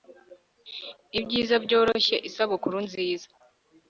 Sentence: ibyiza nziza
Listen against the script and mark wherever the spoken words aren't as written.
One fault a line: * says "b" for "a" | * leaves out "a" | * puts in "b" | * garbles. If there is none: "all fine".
* puts in "byoroshye isabukuru"